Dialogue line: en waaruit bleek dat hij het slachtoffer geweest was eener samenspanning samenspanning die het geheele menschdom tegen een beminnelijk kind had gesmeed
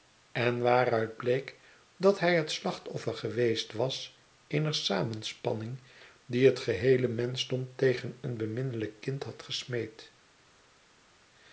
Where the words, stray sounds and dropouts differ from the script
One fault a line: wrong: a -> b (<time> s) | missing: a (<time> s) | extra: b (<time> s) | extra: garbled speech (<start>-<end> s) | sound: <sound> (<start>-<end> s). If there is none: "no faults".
missing: samenspanning (5.8 s)